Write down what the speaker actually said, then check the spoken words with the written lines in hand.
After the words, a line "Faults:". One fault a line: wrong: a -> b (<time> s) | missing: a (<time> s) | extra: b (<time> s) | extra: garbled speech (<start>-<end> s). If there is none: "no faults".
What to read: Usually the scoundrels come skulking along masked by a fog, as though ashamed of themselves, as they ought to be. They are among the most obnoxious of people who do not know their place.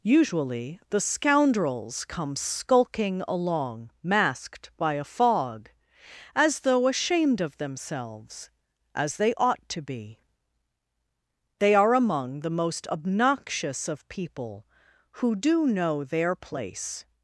Usually the scoundrels come skulking along masked by a fog, as though ashamed of themselves, as they ought to be. They are among the most obnoxious of people who do know their place.
Faults:
missing: not (15.7 s)